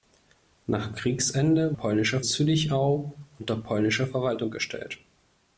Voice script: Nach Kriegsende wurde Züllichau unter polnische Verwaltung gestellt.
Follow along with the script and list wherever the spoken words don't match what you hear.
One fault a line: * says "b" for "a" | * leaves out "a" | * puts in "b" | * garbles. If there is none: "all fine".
* says "polnische" for "wurde"